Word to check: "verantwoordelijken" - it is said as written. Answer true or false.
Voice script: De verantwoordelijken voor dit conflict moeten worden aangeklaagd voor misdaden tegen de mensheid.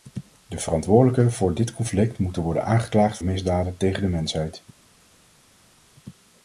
true